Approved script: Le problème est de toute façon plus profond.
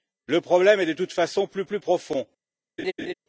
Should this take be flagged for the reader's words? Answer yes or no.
yes